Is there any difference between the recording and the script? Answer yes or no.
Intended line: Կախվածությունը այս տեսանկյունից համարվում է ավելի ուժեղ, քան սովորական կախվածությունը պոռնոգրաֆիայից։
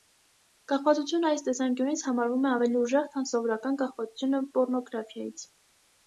no